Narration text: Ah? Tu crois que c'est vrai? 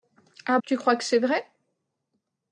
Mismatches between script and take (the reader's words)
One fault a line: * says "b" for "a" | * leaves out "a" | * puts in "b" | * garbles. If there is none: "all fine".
all fine